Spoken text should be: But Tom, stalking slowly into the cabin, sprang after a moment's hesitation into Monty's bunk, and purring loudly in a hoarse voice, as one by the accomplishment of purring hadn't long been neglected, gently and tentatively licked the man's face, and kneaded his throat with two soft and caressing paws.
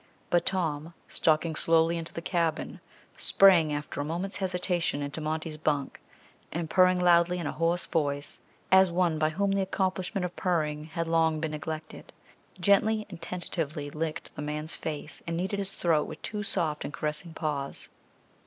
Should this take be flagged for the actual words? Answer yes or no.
yes